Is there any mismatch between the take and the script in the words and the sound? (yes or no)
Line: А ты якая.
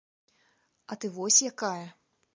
yes